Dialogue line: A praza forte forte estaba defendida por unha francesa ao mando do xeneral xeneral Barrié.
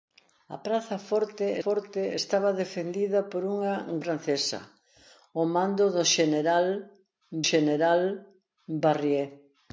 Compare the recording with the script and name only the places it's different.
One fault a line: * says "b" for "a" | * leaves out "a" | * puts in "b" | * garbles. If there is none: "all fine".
all fine